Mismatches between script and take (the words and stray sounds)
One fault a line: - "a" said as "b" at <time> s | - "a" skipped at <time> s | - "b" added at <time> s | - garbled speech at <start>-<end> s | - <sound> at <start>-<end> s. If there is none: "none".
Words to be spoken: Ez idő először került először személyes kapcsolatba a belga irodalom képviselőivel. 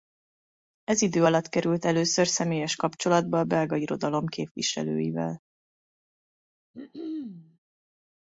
- "először" said as "alatt" at 1.2 s
- throat clearing at 6.7-7.6 s